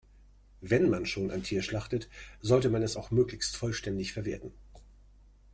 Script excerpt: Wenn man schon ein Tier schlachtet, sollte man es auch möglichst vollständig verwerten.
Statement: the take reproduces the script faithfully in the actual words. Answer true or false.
true